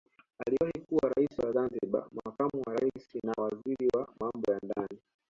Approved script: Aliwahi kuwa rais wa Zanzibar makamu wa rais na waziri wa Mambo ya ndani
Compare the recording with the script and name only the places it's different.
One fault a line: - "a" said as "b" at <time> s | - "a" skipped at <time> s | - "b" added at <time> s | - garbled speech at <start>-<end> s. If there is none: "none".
none